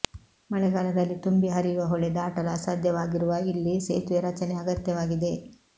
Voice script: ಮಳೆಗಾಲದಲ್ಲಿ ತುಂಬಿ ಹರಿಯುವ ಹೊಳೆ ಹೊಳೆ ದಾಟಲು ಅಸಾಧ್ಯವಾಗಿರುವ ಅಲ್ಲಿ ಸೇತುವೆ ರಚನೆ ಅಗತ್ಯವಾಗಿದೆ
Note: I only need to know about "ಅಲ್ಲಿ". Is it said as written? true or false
false